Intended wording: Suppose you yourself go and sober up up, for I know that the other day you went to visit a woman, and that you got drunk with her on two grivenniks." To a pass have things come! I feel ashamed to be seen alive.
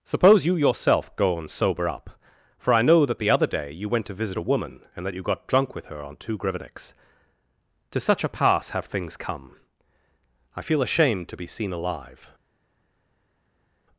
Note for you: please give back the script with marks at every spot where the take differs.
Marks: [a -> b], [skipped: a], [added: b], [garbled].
Suppose you yourself go and sober up [skipped: up,] for I know that the other day you went to visit a woman, and that you got drunk with her on two grivenniks." To [added: such] a pass have things come! I feel ashamed to be seen alive.